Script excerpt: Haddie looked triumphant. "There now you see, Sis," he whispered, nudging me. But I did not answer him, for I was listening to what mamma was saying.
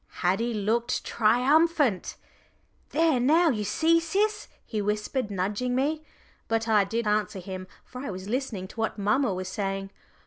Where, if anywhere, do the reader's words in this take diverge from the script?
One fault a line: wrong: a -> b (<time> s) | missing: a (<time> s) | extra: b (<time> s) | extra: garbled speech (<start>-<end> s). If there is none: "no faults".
missing: not (7.0 s)